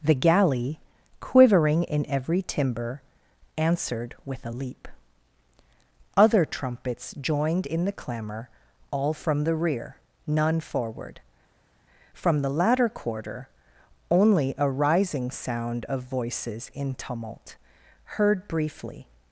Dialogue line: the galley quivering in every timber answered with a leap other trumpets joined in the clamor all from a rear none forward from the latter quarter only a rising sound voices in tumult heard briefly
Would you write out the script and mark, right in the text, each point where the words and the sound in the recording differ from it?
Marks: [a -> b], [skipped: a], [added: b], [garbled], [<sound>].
the galley quivering in every timber answered with a leap other trumpets joined in the clamor all from [a -> the] rear none forward from the latter quarter only a rising sound [added: of] voices in tumult heard briefly